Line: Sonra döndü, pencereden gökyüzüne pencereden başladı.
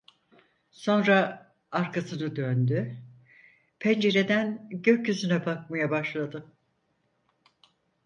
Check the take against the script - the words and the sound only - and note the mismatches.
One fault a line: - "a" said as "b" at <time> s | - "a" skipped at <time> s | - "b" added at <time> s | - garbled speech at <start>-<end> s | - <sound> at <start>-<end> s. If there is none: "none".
- "arkasını" added at 1.7 s
- "pencereden" said as "bakmaya" at 5.4 s